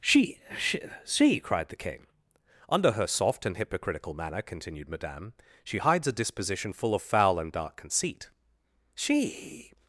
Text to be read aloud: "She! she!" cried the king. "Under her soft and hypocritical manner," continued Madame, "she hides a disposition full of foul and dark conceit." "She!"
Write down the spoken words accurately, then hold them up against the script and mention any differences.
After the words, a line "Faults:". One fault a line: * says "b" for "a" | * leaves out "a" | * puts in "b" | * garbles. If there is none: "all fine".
"She! she!" she cried the king. "Under her soft and hypocritical manner," continued Madame, "she hides a disposition full of foul and dark conceit." "She!"
Faults:
* puts in "she"